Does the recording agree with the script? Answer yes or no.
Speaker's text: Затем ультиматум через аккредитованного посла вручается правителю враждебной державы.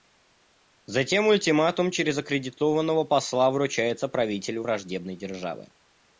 yes